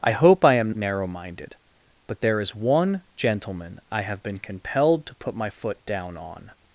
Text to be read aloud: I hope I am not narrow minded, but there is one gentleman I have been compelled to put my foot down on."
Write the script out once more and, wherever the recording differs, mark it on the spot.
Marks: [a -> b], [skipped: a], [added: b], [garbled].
I hope I am [skipped: not] narrow minded, but there is one gentleman I have been compelled to put my foot down on."